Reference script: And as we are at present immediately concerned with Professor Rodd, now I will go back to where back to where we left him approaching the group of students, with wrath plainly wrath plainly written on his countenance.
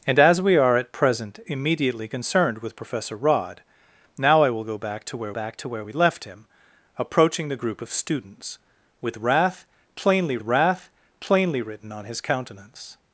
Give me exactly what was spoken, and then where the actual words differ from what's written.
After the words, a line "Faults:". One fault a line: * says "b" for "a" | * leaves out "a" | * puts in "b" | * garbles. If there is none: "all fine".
And as we are at present immediately concerned with Professor Rodd, now I will go back to where back to where we left him approaching the group of students, with wrath plainly wrath plainly written on his countenance.
Faults:
all fine